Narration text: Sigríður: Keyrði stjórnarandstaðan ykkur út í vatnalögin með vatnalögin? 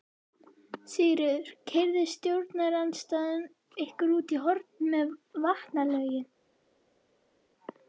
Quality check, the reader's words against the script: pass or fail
fail